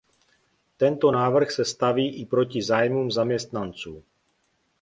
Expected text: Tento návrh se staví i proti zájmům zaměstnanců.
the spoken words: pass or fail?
pass